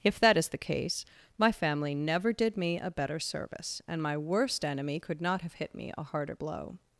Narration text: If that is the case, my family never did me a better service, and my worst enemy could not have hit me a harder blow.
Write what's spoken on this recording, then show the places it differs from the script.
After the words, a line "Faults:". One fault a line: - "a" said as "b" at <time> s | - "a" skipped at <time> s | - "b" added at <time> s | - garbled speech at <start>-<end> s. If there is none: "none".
If that is the case, my family never did me a better service, and my worst enemy could not have hit me a harder blow.
Faults:
none